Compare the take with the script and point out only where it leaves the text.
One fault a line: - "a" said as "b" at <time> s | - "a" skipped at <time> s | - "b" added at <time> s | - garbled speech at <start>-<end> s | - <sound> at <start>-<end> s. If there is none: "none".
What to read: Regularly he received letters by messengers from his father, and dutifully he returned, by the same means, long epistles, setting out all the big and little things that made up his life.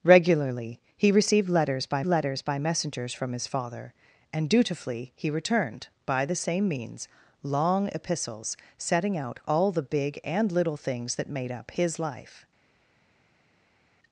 - "letters by" added at 2.1 s